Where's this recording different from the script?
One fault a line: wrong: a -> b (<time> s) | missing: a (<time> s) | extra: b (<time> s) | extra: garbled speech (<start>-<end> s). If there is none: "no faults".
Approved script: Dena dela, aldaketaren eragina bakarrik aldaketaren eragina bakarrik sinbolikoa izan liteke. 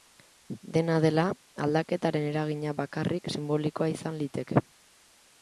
missing: aldaketaren eragina bakarrik (3.3 s)